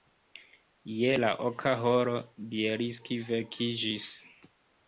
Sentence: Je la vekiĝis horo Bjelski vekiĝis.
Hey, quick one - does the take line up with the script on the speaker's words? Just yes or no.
no